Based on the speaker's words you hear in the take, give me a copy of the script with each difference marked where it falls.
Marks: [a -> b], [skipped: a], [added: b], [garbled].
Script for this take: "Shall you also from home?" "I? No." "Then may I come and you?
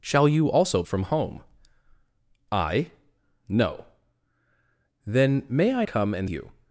"Shall you also from home?" "I? No." "Then may I come and you?